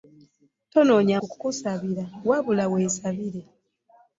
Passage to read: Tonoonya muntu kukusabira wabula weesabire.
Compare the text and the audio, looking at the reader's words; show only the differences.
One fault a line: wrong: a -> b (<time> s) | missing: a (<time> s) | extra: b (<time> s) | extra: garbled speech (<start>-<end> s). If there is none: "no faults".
missing: muntu (1.2 s)